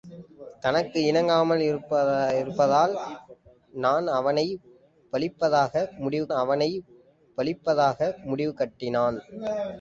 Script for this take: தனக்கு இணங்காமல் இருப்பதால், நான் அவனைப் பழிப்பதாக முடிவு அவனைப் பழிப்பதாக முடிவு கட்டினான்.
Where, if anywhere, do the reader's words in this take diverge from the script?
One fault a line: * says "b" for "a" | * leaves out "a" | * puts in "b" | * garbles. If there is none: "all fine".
all fine